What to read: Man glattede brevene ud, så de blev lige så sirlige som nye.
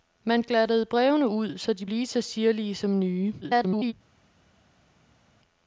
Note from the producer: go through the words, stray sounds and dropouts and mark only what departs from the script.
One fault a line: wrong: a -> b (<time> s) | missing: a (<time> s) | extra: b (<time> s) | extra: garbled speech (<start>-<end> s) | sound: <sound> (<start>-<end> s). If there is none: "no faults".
missing: blev (1.9 s)
extra: garbled speech (3.4-3.9 s)